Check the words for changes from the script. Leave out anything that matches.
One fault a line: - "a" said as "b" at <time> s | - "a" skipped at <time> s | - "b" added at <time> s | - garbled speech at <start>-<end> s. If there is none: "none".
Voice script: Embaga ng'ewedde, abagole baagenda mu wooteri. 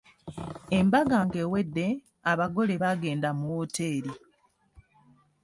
none